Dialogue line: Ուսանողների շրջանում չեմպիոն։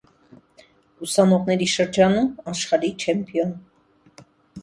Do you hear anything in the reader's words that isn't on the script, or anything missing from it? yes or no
yes